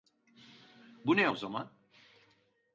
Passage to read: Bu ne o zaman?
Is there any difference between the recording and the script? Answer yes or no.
no